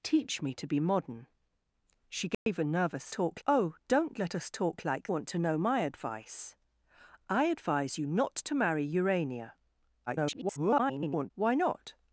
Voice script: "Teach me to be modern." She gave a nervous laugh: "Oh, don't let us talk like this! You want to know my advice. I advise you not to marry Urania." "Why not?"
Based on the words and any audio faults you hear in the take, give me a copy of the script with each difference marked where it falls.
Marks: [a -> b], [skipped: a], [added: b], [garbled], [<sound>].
"Teach me to be modern." She gave [dropout] a nervous [laugh: -> talk] "Oh, don't let us talk like [skipped: this! You] want to know my advice. I advise you not to marry Urania." [garbled] "Why not?"